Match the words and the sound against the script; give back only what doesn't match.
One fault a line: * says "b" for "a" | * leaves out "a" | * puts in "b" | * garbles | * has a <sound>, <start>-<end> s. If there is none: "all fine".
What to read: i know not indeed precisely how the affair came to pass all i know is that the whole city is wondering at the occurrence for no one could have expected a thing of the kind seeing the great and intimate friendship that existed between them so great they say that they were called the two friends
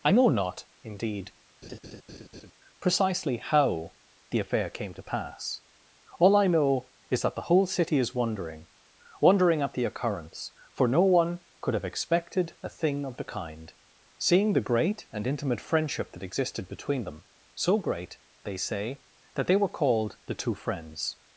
* has a laugh, 1.6-2.5 s
* puts in "wondering"